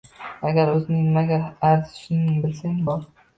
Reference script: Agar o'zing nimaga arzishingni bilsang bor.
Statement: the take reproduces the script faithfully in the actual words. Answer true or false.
true